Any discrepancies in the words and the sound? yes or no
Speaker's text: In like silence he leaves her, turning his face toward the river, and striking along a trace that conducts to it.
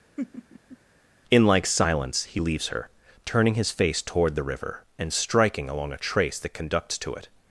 yes